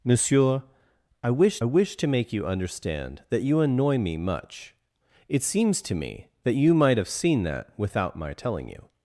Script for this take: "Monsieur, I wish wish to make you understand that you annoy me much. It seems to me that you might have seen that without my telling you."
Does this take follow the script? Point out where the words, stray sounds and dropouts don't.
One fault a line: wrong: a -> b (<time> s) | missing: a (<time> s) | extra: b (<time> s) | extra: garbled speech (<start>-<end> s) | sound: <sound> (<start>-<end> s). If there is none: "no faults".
no faults